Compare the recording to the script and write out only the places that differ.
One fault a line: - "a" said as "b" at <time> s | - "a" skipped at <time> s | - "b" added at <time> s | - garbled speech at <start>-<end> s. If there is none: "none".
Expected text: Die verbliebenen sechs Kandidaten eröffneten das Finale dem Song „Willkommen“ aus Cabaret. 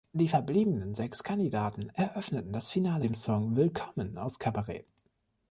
none